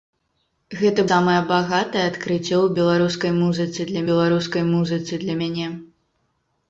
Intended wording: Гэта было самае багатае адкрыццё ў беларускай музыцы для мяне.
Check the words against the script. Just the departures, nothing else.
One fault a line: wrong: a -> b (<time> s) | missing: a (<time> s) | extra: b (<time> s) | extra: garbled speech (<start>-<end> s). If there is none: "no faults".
missing: было (1.0 s)
extra: беларускай музыцы для (4.1 s)